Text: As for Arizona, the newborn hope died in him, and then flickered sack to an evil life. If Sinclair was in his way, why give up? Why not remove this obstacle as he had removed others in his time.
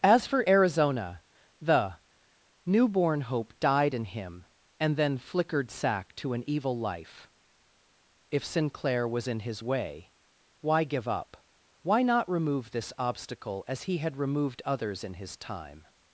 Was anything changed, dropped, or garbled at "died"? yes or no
no